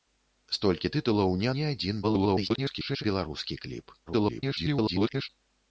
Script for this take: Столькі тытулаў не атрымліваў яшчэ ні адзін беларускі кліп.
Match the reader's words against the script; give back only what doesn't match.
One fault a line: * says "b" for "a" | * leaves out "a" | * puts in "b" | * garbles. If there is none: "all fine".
* leaves out "атрымліваў яшчэ"
* garbles
* garbles